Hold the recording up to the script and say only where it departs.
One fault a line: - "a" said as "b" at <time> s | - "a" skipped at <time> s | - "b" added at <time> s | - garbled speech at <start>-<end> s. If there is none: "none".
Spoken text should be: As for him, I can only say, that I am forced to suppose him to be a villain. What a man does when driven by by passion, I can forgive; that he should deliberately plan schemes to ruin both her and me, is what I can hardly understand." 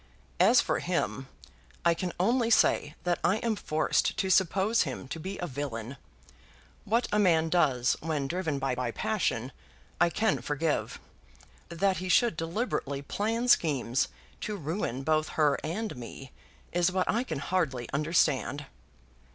none